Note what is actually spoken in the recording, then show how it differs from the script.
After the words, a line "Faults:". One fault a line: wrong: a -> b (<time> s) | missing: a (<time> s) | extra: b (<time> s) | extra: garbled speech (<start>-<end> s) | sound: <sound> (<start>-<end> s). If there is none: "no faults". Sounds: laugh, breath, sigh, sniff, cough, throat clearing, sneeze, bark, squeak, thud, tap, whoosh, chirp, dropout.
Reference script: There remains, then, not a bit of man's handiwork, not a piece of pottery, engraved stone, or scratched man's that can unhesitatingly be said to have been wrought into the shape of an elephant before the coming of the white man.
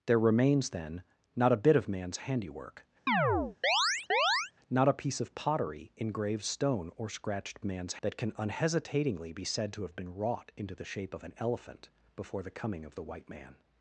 There remains, then, not a bit of man's handiwork, not a piece of pottery, engraved stone, or scratched man's that can unhesitatingly be said to have been wrought into the shape of an elephant before the coming of the white man.
Faults:
sound: chirp (3.1-4.5 s)